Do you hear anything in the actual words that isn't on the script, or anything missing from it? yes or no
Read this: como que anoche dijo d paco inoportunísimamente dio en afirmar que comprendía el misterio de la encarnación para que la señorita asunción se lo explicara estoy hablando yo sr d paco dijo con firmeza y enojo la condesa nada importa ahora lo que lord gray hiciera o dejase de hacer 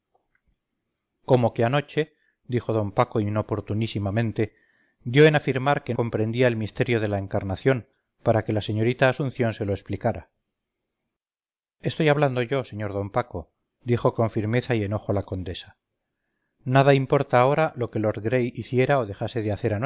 no